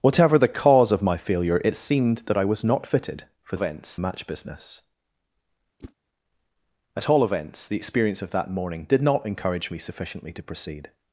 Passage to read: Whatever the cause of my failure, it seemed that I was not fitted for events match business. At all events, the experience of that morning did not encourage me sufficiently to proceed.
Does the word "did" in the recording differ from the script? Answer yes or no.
no